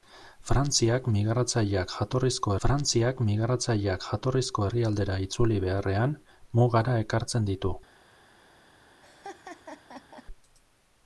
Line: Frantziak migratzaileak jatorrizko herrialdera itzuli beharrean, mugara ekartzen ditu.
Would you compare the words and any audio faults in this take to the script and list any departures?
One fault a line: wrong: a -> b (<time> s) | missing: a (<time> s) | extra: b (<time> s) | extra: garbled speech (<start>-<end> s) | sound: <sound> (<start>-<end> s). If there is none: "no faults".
extra: frantziak migratzaileak jatorrizko (2.6 s)
sound: laugh (9.0-10.3 s)